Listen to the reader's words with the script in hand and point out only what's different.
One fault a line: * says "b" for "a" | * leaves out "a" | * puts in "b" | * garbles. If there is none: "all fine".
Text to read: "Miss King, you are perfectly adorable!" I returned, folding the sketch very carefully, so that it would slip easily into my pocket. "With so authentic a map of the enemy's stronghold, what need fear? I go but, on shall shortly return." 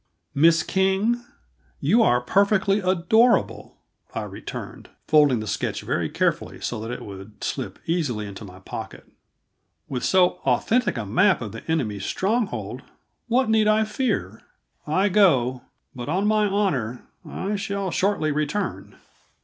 * puts in "I"
* puts in "my honor I"